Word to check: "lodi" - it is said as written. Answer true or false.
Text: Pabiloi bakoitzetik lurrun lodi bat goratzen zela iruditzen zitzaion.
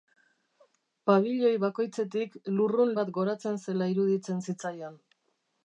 false